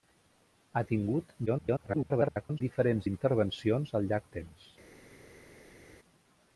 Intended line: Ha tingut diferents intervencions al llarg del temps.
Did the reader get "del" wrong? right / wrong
wrong